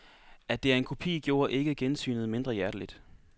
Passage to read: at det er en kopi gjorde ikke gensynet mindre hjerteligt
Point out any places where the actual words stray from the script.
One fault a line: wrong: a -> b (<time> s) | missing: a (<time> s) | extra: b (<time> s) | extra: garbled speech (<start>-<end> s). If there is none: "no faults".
no faults